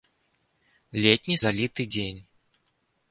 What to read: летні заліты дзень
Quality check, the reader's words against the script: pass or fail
pass